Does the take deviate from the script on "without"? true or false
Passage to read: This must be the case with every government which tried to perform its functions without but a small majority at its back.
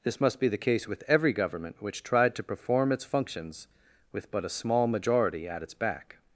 true